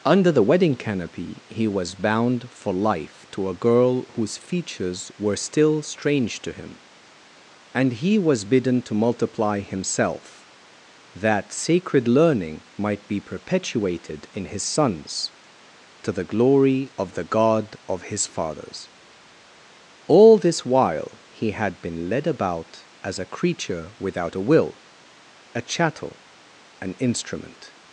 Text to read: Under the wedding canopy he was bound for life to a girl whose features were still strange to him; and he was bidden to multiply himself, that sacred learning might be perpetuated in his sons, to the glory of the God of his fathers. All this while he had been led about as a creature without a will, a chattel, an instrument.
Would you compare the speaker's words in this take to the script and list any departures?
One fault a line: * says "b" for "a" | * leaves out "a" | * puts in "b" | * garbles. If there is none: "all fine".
all fine